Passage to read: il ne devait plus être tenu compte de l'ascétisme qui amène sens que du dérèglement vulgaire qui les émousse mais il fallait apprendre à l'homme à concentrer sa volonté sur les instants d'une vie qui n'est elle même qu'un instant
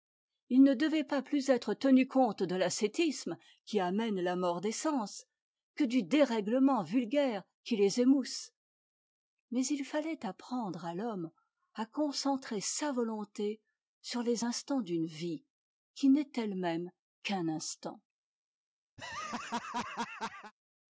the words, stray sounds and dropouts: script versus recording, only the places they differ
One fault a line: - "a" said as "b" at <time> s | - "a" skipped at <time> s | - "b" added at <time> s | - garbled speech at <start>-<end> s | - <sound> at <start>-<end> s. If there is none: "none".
- "pas" added at 1.0 s
- "la mort des" added at 4.2 s
- laugh at 19.0-20.5 s